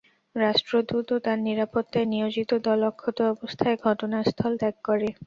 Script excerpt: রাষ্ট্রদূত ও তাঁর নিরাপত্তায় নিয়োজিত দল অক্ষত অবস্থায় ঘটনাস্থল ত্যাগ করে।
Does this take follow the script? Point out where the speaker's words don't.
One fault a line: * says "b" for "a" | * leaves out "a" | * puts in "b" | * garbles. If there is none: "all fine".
all fine